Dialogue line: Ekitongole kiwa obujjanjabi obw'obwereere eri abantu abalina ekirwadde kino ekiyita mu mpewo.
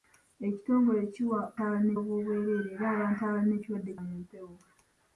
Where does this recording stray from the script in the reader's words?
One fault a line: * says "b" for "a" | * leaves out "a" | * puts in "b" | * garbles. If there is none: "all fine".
* says "abalina" for "obujjanjabi"
* leaves out "kino ekiyita"